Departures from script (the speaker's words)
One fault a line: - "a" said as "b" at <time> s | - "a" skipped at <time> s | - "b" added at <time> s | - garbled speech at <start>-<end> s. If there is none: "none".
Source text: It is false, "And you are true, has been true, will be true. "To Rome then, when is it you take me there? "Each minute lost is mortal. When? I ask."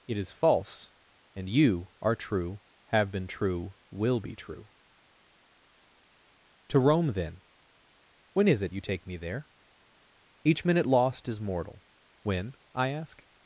- "has" said as "have" at 2.9 s